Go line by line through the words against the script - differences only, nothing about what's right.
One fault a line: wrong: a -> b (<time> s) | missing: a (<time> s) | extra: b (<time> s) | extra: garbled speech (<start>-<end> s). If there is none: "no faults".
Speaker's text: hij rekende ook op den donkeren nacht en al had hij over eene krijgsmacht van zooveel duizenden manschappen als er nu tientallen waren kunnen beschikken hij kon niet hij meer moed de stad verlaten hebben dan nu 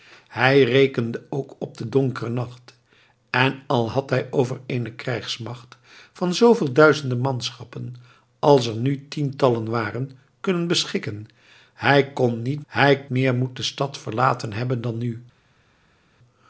no faults